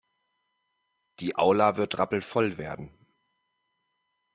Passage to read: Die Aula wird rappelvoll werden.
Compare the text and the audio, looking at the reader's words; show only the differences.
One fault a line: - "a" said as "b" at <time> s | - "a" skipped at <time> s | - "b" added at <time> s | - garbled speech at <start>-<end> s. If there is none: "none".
none